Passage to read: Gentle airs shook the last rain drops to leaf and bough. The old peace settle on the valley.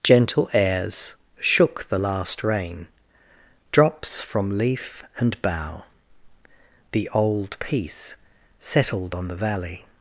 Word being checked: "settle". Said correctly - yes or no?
no